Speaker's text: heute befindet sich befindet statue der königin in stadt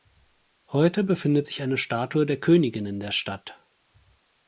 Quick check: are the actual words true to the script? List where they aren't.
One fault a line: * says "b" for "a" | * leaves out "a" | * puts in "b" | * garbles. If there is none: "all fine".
* says "eine" for "befindet"
* puts in "der"